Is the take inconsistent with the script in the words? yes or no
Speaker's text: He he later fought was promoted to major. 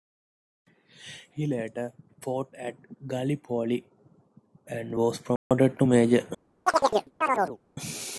yes